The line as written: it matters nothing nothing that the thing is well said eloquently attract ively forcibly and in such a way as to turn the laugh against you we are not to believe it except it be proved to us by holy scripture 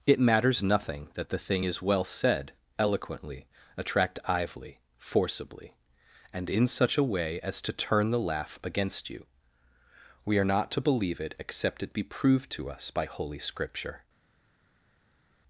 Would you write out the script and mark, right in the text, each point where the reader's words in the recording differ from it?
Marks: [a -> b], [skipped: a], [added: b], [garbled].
it matters nothing [skipped: nothing] that the thing is well said eloquently attract ively forcibly and in such a way as to turn the laugh against you we are not to believe it except it be proved to us by holy scripture